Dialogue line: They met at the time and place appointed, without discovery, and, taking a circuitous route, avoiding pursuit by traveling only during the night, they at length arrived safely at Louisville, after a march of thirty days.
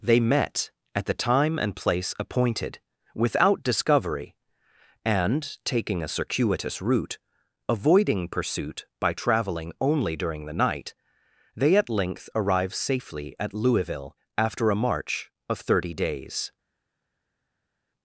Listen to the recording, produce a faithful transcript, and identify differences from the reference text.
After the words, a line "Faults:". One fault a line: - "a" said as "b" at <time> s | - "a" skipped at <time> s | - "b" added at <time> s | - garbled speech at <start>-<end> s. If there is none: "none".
They met at the time and place appointed, without discovery, and, taking a circuitous route, avoiding pursuit by traveling only during the night, they at length arrive safely at Louisville, after a march of thirty days.
Faults:
- "arrived" said as "arrive" at 12.3 s